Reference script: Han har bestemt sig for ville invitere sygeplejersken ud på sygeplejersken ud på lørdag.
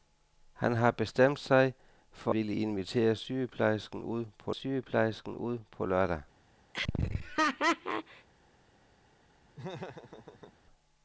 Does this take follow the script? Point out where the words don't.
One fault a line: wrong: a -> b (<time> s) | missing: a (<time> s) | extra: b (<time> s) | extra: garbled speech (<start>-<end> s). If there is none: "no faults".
no faults